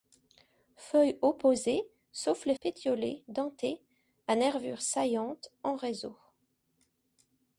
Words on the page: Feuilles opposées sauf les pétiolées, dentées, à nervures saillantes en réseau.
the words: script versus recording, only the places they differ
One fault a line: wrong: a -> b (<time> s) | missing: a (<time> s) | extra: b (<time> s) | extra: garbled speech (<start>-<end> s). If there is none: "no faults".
no faults